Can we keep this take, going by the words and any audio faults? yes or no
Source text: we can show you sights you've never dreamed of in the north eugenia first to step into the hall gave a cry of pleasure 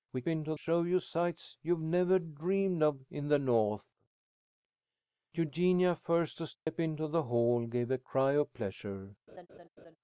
no